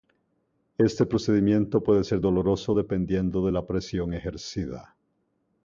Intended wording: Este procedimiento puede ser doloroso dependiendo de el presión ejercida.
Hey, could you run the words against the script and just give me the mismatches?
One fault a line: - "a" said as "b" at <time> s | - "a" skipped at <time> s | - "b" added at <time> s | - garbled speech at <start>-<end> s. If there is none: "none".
- "el" said as "la" at 3.5 s